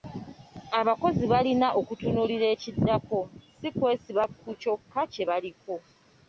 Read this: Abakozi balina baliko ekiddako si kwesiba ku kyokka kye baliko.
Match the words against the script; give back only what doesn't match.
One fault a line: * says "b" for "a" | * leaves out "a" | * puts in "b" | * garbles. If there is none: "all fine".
* says "okutunuulira" for "baliko"